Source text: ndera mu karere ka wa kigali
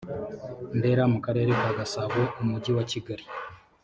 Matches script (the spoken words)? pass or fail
fail